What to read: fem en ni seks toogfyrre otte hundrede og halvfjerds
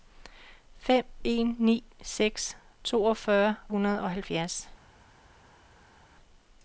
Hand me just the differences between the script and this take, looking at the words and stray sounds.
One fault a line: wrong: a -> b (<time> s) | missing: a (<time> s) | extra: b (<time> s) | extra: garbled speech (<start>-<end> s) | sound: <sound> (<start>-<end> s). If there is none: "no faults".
missing: otte (3.5 s)